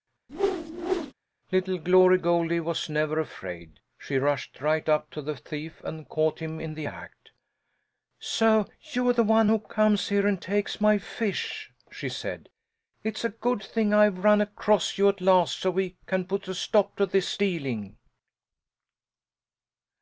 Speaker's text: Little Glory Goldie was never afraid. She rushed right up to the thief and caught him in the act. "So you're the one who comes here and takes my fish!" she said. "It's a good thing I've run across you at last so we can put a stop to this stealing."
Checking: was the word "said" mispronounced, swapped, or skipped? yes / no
no